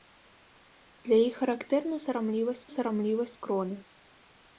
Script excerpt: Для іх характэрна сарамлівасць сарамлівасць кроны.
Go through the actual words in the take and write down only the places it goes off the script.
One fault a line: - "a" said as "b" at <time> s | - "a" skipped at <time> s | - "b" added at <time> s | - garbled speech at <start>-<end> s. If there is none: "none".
none